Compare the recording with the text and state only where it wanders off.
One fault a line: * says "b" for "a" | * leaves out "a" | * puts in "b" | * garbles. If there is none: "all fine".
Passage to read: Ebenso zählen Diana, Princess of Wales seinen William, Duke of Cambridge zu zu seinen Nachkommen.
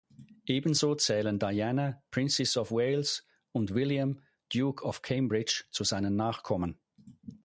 * says "und" for "seinen"
* leaves out "zu"